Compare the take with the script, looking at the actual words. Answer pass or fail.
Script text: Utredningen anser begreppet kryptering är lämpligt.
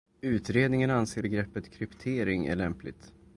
pass